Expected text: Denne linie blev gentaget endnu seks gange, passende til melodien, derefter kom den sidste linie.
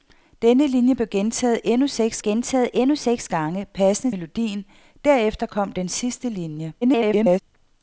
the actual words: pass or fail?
fail